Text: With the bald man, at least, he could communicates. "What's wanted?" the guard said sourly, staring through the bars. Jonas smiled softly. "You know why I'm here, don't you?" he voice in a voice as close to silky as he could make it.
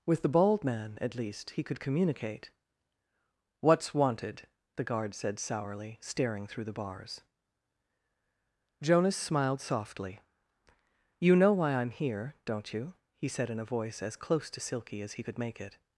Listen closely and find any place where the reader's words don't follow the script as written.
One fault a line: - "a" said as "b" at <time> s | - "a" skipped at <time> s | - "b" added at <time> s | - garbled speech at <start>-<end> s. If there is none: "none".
- "communicates" said as "communicate" at 1.8 s
- "voice" said as "said" at 13.3 s